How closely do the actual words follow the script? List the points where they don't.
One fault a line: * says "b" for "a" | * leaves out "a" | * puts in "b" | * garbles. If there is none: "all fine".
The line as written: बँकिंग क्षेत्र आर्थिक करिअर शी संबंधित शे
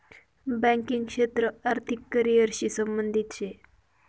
all fine